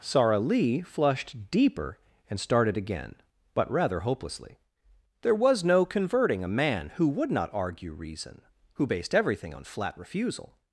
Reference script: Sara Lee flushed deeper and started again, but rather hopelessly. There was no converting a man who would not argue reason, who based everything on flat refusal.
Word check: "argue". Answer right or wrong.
right